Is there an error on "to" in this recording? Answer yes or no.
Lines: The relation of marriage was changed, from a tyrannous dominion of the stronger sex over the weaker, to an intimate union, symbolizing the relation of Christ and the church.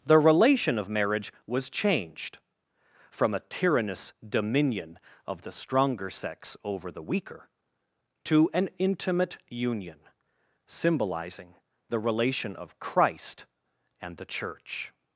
no